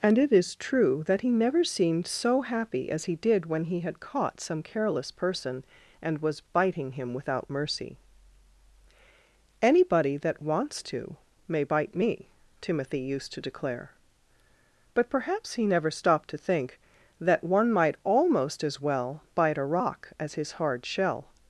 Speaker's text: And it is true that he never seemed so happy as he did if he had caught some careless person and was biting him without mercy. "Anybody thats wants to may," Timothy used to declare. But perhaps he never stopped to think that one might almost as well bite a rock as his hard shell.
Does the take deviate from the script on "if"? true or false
true